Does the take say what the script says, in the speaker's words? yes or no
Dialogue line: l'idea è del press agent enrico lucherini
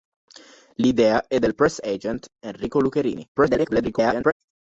no